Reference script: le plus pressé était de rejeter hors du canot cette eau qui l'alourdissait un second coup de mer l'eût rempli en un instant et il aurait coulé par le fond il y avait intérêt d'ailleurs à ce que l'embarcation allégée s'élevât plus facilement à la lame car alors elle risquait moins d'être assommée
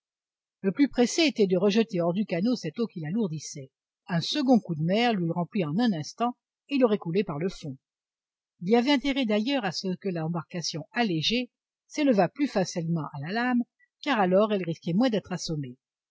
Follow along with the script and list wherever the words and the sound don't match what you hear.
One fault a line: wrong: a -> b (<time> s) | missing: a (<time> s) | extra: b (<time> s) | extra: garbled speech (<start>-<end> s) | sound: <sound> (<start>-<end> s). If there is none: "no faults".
no faults